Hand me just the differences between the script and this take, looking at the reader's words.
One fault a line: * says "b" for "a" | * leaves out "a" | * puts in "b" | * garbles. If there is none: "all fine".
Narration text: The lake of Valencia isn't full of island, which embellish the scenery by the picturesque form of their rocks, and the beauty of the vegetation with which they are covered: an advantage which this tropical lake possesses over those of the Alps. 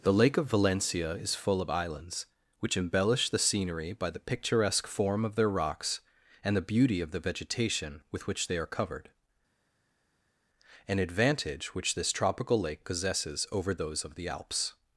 * says "is" for "isn't"
* says "islands" for "island"